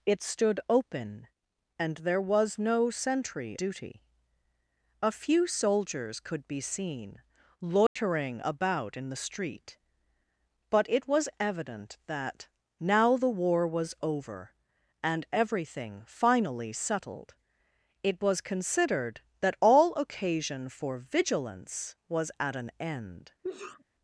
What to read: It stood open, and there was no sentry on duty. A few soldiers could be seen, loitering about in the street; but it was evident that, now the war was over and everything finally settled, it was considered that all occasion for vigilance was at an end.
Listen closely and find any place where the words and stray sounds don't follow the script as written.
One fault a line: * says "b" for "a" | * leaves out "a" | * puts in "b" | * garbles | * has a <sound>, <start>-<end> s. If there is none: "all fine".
* leaves out "on"
* has a dropout, 7.9-8.0 s
* has a sneeze, 23.4-23.8 s